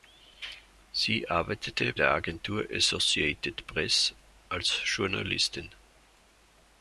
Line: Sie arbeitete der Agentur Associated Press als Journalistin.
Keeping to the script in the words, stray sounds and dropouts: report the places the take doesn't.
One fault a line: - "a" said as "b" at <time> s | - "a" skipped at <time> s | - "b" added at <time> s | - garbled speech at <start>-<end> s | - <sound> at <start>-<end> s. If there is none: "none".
none